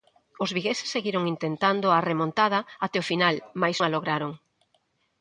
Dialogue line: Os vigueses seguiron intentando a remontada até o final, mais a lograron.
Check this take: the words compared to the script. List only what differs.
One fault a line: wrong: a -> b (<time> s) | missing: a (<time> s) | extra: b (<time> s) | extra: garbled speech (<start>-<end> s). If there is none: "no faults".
no faults